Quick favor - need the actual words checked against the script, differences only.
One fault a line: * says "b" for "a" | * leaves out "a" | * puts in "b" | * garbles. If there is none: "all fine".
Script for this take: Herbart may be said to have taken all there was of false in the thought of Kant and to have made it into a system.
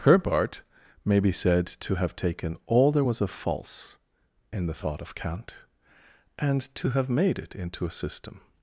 all fine